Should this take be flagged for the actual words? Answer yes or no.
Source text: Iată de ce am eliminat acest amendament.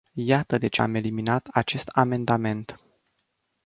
no